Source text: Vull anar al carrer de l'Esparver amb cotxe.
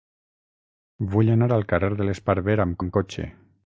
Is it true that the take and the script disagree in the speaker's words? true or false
true